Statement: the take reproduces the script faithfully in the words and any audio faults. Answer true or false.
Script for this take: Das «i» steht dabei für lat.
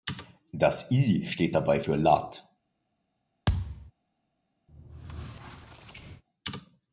false